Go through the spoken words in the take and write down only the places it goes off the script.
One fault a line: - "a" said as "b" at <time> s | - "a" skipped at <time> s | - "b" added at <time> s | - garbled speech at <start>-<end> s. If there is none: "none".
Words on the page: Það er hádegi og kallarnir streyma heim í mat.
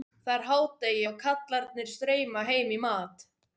none